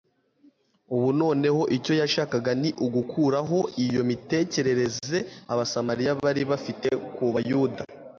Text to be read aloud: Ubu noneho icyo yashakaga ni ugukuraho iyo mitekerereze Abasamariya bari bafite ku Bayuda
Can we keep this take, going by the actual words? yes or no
yes